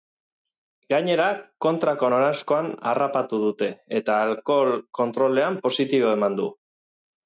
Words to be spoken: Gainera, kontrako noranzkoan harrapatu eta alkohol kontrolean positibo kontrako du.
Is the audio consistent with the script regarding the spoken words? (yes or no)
no